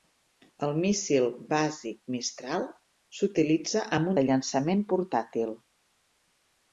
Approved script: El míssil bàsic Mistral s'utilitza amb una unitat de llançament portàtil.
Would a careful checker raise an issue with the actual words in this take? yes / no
yes